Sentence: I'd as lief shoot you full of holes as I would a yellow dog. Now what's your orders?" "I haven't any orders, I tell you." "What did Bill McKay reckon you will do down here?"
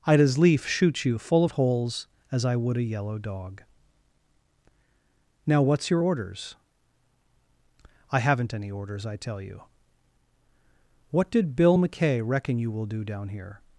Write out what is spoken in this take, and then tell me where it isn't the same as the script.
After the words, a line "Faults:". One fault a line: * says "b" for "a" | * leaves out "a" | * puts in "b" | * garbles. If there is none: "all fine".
I'd as lief shoot you full of holes as I would a yellow dog. Now what's your orders?" "I haven't any orders, I tell you." "What did Bill McKay reckon you will do down here?"
Faults:
all fine